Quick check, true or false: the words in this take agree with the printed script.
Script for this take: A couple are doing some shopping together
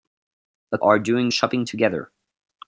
false